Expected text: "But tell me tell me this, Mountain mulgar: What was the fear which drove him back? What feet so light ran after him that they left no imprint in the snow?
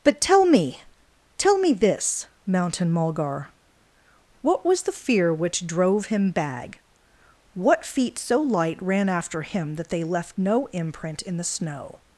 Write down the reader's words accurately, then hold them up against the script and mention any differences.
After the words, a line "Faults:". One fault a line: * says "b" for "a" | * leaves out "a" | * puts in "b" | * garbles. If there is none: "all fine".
"But tell me tell me this, Mountain mulgar: What was the fear which drove him bag? What feet so light ran after him that they left no imprint in the snow?
Faults:
* says "bag" for "back"